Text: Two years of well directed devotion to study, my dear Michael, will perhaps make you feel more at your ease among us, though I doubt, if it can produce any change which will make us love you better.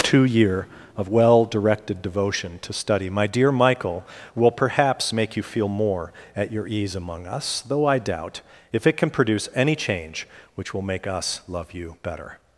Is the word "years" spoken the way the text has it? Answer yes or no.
no